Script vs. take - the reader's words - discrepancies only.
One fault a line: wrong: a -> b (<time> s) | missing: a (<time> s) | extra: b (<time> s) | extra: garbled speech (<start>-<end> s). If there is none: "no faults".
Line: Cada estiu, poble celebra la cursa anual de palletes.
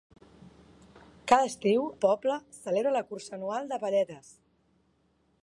no faults